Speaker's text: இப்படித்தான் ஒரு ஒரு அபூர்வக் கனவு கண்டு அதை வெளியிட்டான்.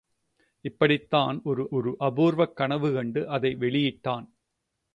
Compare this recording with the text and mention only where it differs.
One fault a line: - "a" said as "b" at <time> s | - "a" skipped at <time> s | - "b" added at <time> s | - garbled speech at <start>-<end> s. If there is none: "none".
none